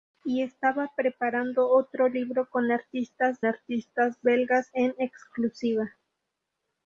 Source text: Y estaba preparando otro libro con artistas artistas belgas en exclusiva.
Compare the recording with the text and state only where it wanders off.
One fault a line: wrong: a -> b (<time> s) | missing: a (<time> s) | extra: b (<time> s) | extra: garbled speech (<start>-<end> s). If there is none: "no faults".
no faults